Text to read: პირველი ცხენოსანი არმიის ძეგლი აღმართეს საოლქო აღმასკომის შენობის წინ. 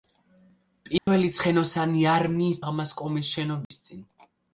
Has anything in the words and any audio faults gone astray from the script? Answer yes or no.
yes